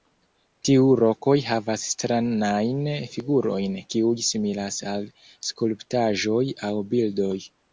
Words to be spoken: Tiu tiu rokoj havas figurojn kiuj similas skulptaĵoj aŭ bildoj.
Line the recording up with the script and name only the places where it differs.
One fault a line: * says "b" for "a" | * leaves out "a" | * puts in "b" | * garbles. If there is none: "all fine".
* leaves out "tiu"
* puts in "stranajn"
* puts in "al"